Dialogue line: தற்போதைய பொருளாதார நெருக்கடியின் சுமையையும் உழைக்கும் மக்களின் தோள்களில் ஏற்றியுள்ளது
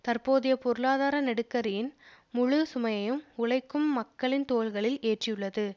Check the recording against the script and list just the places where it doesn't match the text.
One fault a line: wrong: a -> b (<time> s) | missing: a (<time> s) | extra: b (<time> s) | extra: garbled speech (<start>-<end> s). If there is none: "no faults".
extra: முழு (2.3 s)